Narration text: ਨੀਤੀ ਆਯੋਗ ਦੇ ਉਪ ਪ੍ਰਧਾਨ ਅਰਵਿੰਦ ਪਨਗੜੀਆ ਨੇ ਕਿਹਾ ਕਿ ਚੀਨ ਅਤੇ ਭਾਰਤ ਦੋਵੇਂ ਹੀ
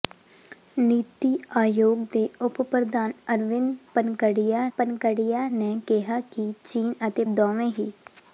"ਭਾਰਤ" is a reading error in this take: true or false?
true